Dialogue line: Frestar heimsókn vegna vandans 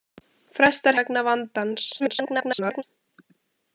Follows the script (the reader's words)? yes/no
no